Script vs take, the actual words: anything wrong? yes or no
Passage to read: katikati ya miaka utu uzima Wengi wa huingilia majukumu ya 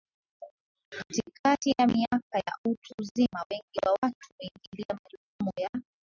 yes